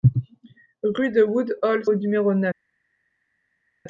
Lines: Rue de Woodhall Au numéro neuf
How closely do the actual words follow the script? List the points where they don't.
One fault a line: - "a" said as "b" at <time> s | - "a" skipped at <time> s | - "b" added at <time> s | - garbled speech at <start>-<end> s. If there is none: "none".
none